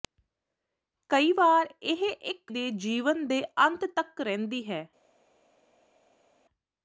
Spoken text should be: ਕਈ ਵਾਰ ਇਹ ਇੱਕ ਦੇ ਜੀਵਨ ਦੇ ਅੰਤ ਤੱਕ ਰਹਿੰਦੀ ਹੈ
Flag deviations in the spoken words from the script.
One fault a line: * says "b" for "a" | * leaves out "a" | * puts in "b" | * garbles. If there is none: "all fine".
all fine